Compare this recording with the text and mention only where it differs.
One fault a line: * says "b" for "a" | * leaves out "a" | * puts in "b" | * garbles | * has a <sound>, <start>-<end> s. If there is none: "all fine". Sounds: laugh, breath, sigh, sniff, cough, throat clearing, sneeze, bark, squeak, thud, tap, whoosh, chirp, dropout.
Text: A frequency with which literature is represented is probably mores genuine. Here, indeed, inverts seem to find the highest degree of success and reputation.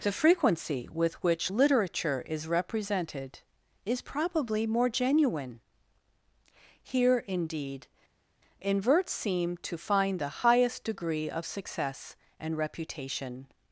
* says "The" for "A"
* says "more" for "mores"